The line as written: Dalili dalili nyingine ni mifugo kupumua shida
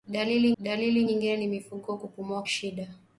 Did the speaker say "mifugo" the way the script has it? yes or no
yes